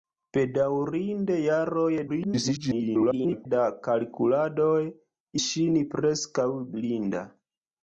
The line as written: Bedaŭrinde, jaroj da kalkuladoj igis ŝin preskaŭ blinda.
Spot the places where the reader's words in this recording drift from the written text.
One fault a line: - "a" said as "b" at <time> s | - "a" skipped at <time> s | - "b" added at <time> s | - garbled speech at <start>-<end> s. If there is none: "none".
- garbled speech at 2.1-3.5 s
- "igis" skipped at 4.8 s